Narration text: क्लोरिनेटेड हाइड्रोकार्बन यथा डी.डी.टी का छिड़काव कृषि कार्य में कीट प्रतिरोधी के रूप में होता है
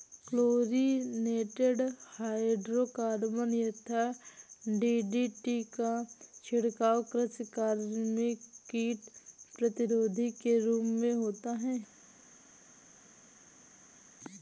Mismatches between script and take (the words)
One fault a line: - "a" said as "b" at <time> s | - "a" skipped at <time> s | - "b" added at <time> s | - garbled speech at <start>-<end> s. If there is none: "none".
none